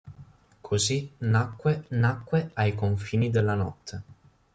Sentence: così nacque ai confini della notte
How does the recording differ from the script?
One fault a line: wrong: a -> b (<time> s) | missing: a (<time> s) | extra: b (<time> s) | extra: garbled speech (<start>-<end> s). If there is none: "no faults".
extra: nacque (1.9 s)